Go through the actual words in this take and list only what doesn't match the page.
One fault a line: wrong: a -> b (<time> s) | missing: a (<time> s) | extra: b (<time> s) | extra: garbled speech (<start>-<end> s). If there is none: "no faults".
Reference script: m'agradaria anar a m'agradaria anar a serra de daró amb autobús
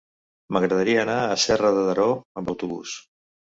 missing: m'agradaria anar a (1.4 s)